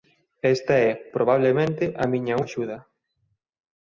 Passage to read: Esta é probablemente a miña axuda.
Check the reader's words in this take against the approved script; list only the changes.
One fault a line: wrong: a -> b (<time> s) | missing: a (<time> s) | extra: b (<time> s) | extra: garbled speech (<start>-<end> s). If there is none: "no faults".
no faults